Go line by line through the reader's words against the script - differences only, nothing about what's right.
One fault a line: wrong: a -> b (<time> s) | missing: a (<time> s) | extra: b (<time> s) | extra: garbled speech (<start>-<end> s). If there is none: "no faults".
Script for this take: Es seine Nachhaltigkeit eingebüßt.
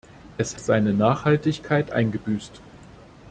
no faults